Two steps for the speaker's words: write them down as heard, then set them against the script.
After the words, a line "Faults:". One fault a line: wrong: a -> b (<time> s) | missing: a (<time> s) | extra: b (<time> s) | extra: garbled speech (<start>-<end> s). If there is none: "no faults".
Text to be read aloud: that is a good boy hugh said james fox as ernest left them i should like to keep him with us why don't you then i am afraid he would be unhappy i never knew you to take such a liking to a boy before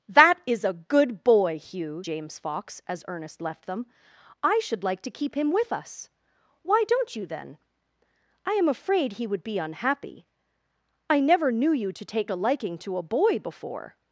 that is a good boy hugh james fox as ernest left them i should like to keep him with us why don't you then i am afraid he would be unhappy i never knew you to take a liking to a boy before
Faults:
missing: said (2.0 s)
missing: such (12.3 s)